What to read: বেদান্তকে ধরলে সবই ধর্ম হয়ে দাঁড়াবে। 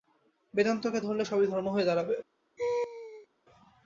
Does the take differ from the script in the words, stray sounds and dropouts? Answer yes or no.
yes